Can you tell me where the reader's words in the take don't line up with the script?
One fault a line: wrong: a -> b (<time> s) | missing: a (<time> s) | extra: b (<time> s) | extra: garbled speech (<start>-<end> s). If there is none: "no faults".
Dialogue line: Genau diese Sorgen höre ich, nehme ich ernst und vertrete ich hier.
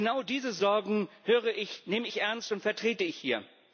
no faults